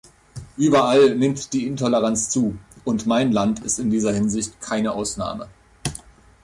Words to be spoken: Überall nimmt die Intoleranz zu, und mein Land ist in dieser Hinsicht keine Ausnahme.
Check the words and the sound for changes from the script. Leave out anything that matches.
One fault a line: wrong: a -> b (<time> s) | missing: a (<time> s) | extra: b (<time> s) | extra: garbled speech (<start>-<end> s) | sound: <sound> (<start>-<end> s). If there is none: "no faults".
no faults